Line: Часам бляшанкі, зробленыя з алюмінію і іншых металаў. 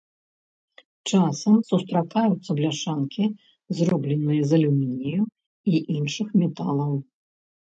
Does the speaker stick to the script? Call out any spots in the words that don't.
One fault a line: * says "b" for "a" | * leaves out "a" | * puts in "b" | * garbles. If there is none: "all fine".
* puts in "сустракаюцца"